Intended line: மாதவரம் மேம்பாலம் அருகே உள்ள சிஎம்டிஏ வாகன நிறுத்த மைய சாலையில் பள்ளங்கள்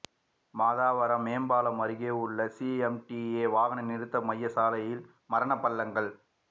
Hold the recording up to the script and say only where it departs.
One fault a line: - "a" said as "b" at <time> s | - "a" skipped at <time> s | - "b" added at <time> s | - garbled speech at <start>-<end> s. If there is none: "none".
- "மரண" added at 5.3 s